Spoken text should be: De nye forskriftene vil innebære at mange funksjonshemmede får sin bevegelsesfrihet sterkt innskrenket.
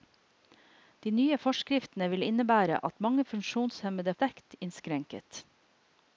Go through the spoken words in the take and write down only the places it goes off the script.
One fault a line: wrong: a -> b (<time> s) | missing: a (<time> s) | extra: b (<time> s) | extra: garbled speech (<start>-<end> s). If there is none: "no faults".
missing: får sin bevegelsesfrihet (4.1 s)